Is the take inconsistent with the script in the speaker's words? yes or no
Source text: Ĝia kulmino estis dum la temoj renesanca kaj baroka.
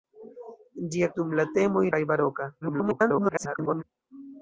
yes